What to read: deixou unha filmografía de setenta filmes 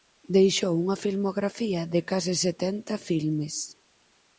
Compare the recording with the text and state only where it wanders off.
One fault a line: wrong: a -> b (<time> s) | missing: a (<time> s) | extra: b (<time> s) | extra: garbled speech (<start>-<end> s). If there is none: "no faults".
extra: case (2.1 s)